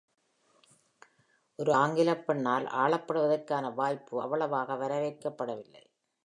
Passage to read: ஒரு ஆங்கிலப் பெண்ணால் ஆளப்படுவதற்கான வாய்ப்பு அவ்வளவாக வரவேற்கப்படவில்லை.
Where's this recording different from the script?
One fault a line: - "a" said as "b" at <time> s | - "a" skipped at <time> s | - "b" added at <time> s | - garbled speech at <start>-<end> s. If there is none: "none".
none